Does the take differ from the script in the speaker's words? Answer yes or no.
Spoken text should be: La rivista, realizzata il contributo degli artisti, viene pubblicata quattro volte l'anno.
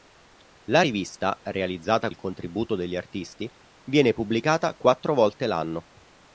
no